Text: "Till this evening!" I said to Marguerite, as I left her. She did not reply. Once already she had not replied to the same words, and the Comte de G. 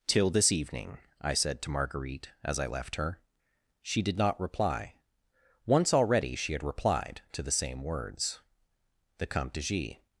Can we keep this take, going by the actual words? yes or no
no